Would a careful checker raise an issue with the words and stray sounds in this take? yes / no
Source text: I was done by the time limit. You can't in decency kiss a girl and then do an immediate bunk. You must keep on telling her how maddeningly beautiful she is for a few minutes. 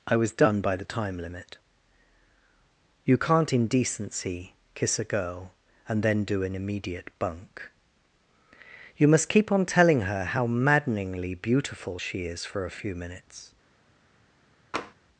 yes